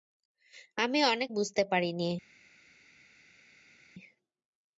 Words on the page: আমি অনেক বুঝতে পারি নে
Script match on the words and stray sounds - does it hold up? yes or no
yes